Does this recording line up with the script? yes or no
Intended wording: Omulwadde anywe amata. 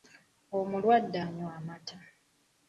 yes